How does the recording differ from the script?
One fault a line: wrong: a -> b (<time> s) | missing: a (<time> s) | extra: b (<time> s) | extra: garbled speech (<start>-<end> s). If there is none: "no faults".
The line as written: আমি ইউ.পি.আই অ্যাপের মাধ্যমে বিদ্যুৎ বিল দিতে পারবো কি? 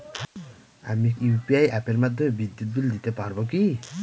no faults